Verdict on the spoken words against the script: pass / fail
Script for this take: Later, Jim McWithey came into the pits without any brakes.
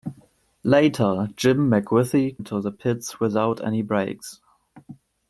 fail